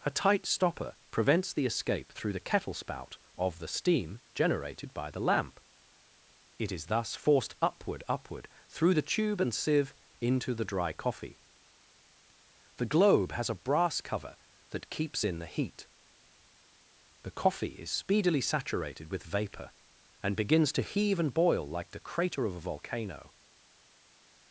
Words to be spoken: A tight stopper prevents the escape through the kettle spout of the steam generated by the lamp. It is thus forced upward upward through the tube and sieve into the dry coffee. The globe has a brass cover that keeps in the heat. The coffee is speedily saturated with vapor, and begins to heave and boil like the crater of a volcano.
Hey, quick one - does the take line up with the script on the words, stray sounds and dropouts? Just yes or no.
yes